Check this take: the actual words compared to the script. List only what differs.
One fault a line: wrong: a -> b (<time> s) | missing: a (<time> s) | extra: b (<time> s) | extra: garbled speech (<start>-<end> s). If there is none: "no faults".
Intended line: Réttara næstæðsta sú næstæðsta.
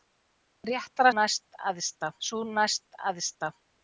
no faults